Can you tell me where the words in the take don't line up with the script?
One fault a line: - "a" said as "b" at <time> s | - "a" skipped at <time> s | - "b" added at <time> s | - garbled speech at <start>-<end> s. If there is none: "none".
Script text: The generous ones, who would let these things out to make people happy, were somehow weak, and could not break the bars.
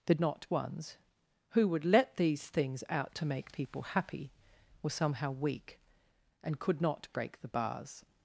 - "generous" said as "not" at 0.2 s